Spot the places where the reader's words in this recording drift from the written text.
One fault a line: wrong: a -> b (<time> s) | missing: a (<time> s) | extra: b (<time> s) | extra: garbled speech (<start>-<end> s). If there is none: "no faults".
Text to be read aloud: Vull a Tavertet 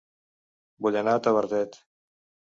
extra: anar (1.0 s)